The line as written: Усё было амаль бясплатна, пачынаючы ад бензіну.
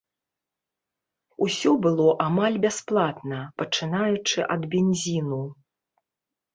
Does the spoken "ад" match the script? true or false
true